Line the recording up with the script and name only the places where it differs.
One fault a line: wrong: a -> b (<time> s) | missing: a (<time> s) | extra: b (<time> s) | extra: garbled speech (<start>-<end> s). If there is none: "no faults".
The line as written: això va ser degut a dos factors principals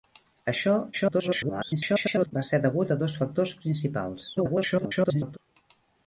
extra: garbled speech (0.9-2.3 s)
extra: garbled speech (4.3-5.4 s)